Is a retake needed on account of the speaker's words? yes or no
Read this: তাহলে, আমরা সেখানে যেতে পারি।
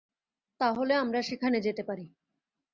no